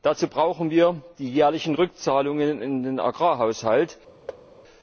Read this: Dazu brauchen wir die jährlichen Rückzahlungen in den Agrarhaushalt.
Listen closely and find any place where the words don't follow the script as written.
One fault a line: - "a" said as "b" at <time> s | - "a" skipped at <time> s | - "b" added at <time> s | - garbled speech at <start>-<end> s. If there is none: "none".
none